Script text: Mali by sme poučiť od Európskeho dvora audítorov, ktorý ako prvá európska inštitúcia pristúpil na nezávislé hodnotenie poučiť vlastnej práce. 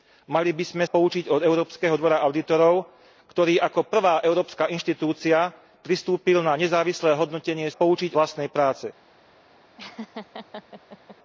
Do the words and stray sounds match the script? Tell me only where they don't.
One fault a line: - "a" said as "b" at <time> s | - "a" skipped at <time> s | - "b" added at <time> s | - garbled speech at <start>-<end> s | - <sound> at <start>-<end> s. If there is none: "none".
- laugh at 9.8-11.2 s